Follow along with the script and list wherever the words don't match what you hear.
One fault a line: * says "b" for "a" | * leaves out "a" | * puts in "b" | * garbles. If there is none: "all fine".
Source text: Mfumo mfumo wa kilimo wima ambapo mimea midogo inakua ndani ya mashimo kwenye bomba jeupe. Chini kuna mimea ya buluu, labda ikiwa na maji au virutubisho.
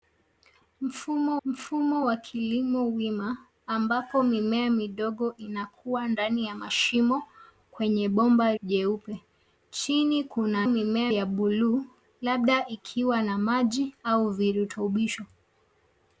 all fine